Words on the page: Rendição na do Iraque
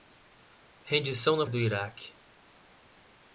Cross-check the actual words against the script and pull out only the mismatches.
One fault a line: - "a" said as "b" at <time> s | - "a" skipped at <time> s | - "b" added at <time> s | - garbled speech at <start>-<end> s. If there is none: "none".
none